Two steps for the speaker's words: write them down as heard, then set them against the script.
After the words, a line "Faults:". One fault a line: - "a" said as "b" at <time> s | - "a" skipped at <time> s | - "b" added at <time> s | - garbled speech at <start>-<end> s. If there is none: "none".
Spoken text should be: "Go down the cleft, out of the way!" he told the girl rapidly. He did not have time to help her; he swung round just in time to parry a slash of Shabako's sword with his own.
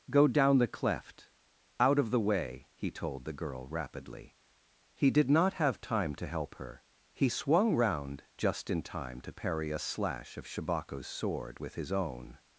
"Go down the cleft, out of the way!" he told the girl rapidly. He did not have time to help her; he swung round just in time to parry a slash of Shabako's sword with his own.
Faults:
none